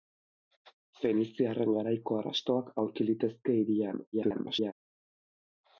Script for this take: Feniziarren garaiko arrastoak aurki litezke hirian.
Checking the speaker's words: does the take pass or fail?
fail